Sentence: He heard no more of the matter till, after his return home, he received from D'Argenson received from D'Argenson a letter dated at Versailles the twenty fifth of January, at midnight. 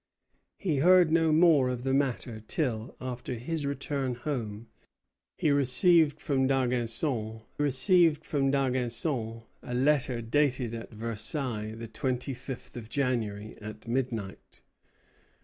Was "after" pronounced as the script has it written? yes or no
yes